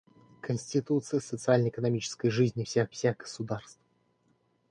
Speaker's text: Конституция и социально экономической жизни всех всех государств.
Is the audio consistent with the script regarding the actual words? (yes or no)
yes